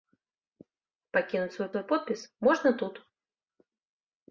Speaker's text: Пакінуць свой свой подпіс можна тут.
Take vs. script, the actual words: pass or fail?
pass